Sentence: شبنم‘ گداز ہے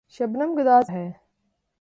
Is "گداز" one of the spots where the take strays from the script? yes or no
no